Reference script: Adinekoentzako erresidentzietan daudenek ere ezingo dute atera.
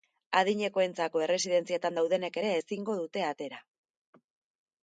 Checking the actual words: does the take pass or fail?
pass